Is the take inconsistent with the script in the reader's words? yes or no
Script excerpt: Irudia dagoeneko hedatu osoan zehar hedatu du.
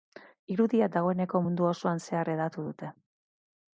yes